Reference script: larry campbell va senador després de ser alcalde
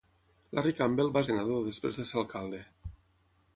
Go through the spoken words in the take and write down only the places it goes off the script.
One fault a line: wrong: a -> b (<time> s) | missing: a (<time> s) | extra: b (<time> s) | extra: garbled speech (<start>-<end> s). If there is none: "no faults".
no faults